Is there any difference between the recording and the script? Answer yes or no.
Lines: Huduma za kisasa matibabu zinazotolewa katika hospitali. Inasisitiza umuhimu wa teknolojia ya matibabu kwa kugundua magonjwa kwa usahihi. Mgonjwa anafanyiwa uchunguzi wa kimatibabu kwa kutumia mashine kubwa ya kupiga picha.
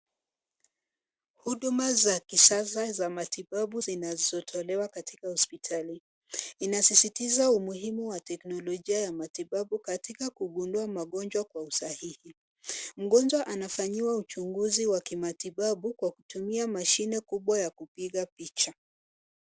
yes